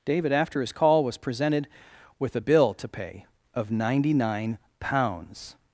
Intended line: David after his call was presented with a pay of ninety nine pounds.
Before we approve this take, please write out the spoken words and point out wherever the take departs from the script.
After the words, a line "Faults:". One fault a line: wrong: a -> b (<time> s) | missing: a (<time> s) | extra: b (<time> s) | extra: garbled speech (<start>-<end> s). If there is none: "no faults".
David after his call was presented with a bill to pay of ninety nine pounds.
Faults:
extra: bill to (2.4 s)